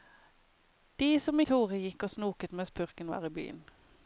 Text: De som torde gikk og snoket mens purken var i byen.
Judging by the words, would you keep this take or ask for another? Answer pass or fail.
pass